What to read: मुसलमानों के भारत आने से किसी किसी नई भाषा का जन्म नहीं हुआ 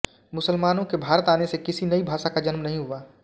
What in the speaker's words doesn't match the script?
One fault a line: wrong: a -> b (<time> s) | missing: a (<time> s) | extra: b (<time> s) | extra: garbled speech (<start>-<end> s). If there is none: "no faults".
missing: किसी (1.9 s)